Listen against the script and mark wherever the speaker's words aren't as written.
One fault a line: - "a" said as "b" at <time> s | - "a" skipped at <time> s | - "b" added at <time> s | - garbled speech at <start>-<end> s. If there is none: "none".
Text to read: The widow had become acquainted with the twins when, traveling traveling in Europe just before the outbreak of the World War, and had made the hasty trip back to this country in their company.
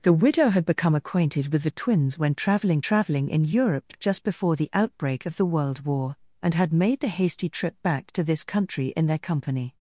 none